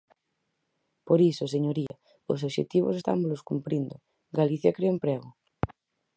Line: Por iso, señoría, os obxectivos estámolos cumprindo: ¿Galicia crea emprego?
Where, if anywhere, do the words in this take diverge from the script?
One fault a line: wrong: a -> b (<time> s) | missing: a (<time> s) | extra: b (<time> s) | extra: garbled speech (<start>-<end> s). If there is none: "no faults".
no faults